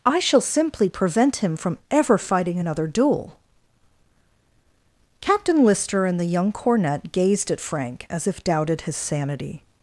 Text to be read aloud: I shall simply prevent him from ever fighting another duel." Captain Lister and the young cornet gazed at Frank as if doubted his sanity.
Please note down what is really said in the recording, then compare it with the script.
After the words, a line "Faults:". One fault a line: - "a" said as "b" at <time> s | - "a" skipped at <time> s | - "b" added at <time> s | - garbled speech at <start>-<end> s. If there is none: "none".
I shall simply prevent him from ever fighting another duel." Captain Lister and the young cornet gazed at Frank as if doubted his sanity.
Faults:
none